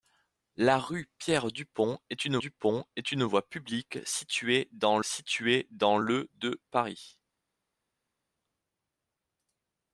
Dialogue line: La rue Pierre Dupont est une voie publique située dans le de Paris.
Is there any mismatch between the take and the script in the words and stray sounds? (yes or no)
yes